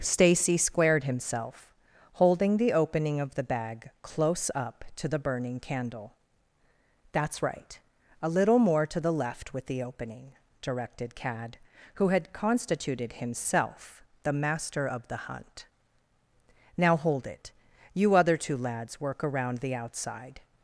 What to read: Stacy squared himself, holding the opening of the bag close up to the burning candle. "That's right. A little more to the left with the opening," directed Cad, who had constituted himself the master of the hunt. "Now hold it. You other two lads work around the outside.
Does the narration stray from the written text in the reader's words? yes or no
no